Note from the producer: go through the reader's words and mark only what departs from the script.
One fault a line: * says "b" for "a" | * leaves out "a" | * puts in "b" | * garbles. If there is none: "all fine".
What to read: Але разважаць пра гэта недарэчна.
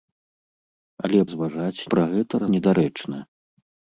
all fine